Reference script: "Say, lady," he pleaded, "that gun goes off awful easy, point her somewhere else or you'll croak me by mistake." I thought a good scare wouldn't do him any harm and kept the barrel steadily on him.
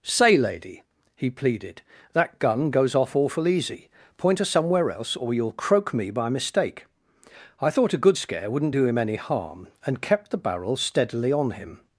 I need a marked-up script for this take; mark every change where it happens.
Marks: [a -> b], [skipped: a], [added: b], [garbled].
"Say, lady," he pleaded, "that gun goes off awful easy, point her somewhere else or you'll croak me by mistake." I thought a good scare wouldn't do him any harm and kept the barrel steadily on him.